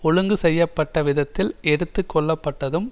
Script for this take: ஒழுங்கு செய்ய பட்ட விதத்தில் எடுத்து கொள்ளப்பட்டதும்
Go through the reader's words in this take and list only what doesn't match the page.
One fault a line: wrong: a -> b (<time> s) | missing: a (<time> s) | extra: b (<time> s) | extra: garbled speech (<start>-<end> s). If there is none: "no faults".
no faults